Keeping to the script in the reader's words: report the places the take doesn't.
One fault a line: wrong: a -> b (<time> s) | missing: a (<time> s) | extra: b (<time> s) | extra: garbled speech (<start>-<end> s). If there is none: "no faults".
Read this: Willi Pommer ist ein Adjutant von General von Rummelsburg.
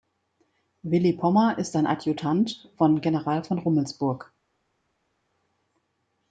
no faults